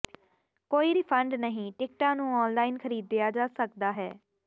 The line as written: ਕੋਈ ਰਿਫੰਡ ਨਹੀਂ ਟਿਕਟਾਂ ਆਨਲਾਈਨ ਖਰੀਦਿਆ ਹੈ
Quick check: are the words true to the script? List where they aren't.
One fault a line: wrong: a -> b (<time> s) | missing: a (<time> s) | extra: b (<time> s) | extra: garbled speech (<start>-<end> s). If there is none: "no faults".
extra: ਨੂੰ (2.2 s)
extra: ਜਾ ਸਕਦਾ (3.3 s)